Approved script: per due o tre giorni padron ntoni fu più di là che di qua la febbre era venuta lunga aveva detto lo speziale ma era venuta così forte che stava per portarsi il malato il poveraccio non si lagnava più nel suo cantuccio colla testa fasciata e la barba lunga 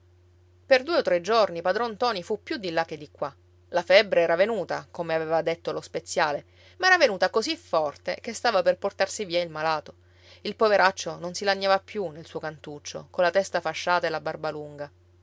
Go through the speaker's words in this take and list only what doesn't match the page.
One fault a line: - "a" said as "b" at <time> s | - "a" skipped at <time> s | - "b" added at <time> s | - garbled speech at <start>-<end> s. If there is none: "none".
- "lunga" said as "come" at 4.9 s
- "via" added at 9.2 s